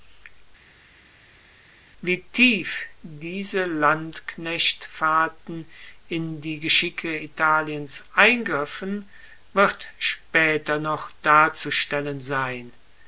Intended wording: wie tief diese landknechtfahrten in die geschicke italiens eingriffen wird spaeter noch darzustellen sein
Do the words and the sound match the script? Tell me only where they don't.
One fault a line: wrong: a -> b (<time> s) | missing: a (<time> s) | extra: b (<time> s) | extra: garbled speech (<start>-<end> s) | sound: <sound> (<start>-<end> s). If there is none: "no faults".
no faults